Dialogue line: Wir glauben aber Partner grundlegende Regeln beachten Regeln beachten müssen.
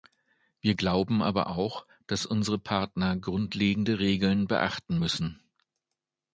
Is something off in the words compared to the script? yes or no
yes